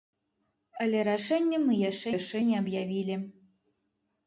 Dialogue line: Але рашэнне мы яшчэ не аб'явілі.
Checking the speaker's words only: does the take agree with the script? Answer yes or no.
no